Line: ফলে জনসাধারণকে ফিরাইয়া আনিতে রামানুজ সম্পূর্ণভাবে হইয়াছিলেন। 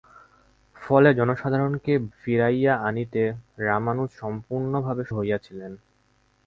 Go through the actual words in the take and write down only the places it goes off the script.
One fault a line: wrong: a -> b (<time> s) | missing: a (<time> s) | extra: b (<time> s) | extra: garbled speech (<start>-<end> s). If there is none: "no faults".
no faults